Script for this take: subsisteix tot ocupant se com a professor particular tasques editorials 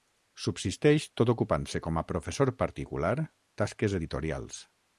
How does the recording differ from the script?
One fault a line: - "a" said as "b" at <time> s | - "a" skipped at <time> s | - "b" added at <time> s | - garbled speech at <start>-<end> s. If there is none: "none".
none